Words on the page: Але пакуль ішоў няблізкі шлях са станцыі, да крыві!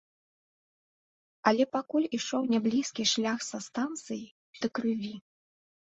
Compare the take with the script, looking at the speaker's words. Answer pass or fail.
pass